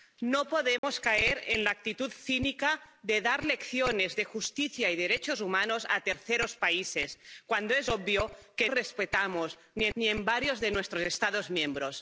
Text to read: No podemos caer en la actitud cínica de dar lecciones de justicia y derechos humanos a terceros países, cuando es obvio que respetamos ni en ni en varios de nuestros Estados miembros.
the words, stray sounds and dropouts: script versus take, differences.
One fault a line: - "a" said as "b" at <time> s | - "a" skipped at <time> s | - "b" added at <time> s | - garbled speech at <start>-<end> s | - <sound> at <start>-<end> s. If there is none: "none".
- dropout at 0.8-0.8 s